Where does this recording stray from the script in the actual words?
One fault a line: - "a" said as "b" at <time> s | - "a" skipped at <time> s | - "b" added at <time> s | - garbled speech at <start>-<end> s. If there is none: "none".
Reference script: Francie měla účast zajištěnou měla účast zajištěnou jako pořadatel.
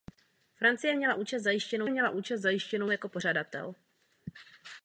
none